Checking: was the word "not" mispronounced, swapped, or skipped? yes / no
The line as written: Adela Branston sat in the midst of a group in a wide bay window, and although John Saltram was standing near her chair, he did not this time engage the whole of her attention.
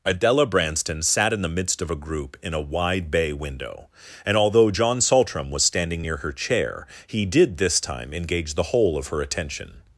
yes